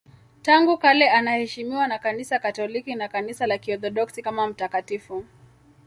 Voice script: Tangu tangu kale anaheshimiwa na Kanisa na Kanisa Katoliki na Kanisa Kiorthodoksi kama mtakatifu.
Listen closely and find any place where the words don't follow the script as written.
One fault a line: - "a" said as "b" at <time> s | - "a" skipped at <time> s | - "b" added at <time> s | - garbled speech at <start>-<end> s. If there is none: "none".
- "tangu" skipped at 0.8 s
- "na Kanisa" skipped at 2.4 s
- "la" added at 3.4 s